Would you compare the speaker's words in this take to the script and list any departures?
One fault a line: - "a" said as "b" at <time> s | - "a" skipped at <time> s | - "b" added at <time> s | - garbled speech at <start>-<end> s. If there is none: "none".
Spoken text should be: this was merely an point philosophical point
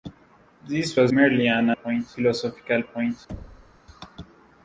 none